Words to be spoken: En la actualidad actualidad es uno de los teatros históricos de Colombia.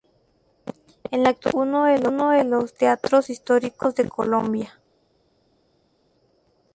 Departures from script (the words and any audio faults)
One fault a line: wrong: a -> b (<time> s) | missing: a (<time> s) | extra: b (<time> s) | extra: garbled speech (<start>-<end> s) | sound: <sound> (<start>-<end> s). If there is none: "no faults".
missing: actualidad (1.9 s)